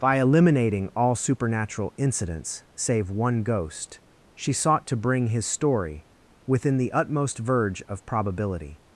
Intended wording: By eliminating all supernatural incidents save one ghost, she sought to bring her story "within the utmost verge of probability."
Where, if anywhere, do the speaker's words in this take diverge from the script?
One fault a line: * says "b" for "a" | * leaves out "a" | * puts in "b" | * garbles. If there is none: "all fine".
* says "his" for "her"